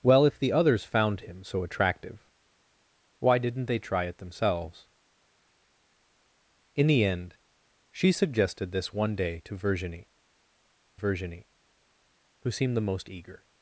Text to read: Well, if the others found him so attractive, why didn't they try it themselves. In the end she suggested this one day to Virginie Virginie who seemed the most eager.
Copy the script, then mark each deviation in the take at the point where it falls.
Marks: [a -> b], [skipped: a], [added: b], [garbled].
Well, if the others found him so attractive, why didn't they try it themselves. In the end she suggested this one day to Virginie Virginie who seemed the most eager.